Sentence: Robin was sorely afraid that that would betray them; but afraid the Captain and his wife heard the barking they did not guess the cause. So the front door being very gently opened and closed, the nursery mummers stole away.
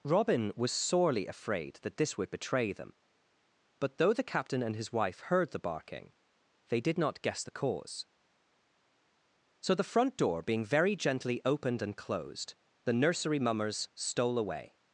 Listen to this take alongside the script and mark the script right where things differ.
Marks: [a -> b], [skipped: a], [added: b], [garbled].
Robin was sorely afraid that [that -> this] would betray them; but [afraid -> though] the Captain and his wife heard the barking they did not guess the cause. So the front door being very gently opened and closed, the nursery mummers stole away.